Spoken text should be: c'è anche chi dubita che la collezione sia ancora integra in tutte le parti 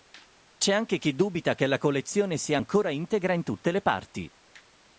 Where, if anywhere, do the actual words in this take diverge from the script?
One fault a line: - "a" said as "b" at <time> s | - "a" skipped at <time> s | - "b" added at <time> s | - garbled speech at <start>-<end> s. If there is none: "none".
none